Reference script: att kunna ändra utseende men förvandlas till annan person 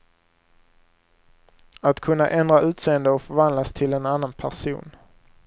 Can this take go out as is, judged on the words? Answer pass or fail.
fail